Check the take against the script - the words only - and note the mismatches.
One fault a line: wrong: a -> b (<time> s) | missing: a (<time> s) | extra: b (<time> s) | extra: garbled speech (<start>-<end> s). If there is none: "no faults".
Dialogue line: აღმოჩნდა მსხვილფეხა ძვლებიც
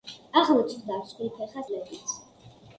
no faults